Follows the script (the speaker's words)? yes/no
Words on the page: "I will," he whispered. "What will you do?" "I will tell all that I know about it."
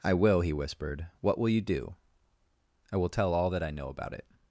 yes